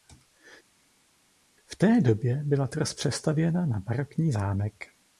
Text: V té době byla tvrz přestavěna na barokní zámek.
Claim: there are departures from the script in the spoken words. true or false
false